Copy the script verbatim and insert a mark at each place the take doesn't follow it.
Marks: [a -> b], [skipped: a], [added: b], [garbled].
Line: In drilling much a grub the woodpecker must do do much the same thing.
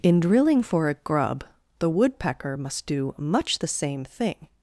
In drilling [much -> for] a grub the woodpecker must do [skipped: do] much the same thing.